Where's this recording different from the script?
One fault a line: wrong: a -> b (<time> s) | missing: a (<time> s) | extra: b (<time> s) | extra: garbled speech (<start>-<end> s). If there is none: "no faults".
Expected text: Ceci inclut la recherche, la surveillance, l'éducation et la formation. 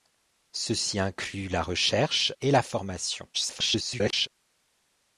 missing: la surveillance l'éducation (2.3 s)
extra: garbled speech (3.3-4.3 s)